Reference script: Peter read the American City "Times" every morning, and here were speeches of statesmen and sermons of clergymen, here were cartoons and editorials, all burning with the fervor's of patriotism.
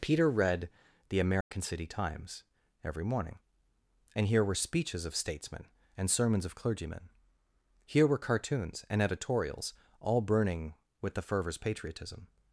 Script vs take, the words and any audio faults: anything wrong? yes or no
yes